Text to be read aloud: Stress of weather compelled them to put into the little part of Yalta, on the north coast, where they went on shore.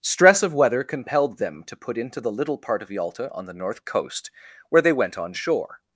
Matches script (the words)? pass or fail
pass